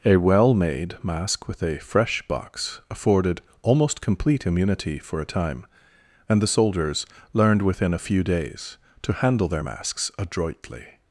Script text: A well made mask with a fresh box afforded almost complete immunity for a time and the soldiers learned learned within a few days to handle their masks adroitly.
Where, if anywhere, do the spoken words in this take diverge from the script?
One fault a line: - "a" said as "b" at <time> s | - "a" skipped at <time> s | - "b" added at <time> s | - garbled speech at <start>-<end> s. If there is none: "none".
- "learned" skipped at 7.6 s